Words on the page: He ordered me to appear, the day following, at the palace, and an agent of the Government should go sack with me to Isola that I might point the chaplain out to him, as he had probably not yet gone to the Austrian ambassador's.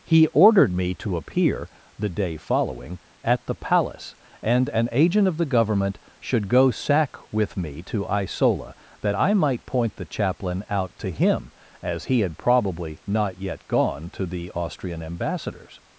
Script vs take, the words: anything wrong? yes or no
no